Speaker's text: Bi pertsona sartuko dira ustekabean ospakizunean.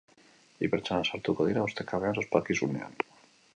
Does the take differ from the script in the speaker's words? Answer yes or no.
no